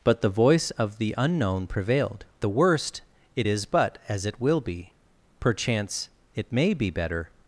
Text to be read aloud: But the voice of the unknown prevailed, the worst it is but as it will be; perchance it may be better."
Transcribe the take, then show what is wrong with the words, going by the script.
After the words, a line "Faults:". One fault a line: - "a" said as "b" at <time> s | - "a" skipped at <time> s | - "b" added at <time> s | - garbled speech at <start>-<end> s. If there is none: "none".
But the voice of the unknown prevailed, the worst it is but as it will be; perchance it may be better."
Faults:
none